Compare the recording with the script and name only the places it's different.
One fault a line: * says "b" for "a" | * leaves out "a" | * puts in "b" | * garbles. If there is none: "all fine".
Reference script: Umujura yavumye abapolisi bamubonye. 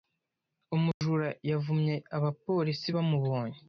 all fine